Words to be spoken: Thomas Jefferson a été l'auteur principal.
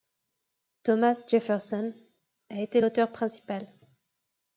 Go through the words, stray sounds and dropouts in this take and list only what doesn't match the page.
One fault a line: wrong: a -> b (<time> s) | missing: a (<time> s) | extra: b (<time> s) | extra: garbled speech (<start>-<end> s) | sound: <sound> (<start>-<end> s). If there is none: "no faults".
no faults